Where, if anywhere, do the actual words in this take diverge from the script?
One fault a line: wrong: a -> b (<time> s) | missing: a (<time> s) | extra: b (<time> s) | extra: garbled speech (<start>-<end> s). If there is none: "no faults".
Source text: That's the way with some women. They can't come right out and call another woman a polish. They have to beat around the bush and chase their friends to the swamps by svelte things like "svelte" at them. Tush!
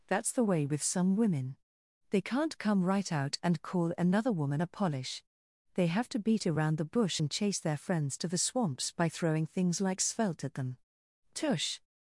wrong: svelte -> throwing (9.1 s)